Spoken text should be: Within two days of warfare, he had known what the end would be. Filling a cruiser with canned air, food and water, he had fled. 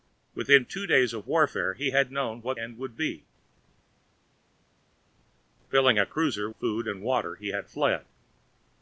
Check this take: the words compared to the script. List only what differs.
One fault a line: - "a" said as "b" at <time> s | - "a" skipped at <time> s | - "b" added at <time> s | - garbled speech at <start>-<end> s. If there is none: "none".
- "the" skipped at 2.6 s
- "with canned air" skipped at 6.5 s